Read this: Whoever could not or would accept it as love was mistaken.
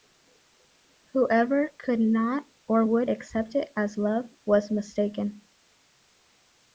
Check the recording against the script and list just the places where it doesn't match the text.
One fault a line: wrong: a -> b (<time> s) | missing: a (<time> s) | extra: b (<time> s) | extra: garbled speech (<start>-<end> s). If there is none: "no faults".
no faults